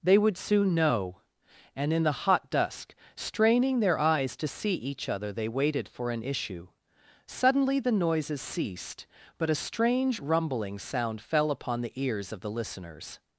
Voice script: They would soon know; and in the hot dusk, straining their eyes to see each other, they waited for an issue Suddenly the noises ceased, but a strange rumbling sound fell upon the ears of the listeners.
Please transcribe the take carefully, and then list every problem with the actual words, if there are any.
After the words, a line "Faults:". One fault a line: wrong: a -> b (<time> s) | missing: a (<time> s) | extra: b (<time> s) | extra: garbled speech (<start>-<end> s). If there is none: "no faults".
They would soon know; and in the hot dusk, straining their eyes to see each other, they waited for an issue Suddenly the noises ceased, but a strange rumbling sound fell upon the ears of the listeners.
Faults:
no faults